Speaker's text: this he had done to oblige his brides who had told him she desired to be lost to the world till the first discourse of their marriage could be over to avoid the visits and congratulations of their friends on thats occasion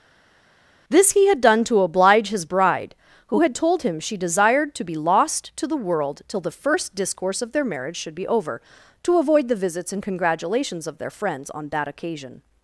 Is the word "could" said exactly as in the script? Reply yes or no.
no